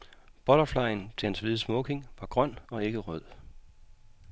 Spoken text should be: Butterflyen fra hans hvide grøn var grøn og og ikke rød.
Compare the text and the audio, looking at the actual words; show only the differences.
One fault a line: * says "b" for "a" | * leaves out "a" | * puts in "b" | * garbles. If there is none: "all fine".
* says "til" for "fra"
* says "smoking" for "grøn"
* leaves out "og"